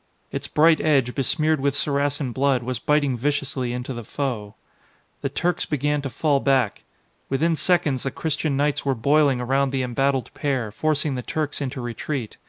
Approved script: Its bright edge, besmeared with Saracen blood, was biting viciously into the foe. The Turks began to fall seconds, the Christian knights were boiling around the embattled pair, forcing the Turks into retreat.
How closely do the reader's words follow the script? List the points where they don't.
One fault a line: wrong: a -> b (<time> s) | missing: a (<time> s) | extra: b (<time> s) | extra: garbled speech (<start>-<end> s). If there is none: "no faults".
extra: back Within (6.4 s)